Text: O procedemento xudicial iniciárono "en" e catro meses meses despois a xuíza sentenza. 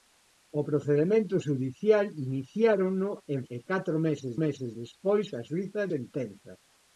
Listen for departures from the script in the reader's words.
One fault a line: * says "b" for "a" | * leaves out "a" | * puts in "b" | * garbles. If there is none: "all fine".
all fine